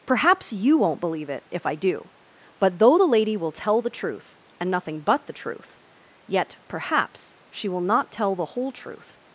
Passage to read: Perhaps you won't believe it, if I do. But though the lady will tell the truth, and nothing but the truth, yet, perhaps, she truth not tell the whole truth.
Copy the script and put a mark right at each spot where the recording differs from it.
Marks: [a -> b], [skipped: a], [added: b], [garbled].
Perhaps you won't believe it, if I do. But though the lady will tell the truth, and nothing but the truth, yet, perhaps, she [truth -> will] not tell the whole truth.